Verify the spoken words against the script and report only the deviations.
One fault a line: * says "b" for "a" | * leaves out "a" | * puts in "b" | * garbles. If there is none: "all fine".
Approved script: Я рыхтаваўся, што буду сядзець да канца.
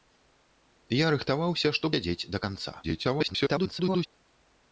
* leaves out "буду"
* garbles